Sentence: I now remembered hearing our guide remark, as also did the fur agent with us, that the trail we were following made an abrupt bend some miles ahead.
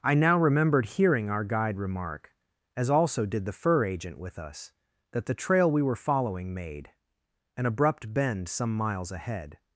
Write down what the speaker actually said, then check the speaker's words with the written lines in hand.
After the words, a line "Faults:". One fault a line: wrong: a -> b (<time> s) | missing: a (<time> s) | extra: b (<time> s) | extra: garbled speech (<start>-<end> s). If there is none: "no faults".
I now remembered hearing our guide remark, as also did the fur agent with us, that the trail we were following made an abrupt bend some miles ahead.
Faults:
no faults